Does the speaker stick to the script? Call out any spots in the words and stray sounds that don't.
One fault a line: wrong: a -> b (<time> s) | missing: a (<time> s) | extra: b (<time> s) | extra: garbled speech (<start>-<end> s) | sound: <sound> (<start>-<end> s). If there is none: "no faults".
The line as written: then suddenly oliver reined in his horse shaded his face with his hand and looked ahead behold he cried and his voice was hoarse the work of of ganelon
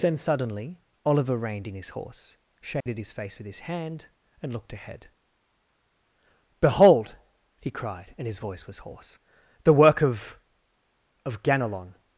sound: dropout (2.8-2.9 s)